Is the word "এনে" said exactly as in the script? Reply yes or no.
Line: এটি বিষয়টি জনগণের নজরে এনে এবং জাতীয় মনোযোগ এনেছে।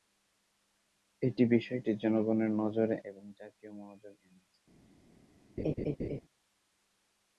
no